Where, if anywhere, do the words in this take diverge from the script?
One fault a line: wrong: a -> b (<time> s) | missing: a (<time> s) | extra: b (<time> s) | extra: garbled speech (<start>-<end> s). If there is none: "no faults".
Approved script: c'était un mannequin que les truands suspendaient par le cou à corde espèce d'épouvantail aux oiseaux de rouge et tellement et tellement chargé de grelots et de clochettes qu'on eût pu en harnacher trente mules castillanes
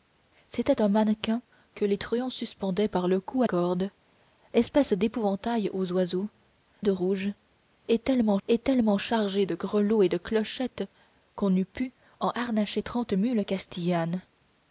no faults